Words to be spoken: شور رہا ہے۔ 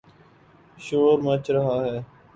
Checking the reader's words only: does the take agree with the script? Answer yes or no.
no